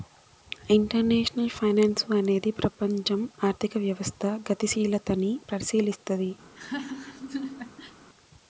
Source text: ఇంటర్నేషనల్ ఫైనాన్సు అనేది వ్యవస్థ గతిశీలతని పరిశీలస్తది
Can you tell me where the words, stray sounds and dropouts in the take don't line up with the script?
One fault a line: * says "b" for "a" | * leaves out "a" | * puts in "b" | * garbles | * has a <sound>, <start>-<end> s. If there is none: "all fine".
* puts in "ప్రపంచం ఆర్థిక"
* has a laugh, 6.4-8.0 s